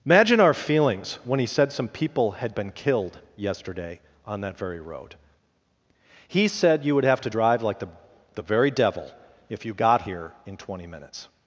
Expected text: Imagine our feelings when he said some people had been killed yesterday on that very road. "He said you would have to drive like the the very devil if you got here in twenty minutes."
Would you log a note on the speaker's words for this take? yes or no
no